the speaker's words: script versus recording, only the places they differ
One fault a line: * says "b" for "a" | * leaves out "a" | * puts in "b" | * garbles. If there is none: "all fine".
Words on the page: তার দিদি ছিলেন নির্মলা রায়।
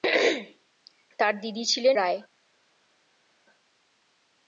* leaves out "নির্মলা"